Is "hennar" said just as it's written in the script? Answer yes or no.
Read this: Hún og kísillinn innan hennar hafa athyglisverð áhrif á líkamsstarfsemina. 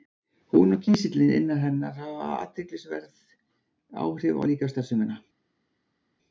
yes